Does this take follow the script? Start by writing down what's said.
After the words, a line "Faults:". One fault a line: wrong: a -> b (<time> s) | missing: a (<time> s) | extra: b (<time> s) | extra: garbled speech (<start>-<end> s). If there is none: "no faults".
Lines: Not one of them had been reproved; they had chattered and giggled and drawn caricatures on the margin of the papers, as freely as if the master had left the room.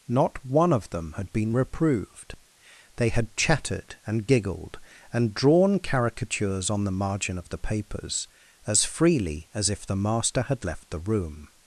Not one of them had been reproved; they had chattered and giggled and drawn caricatures on the margin of the papers, as freely as if the master had left the room.
Faults:
no faults